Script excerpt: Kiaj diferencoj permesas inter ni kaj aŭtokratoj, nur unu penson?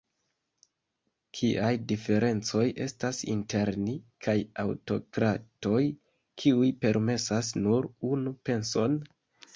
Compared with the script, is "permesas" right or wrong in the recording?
wrong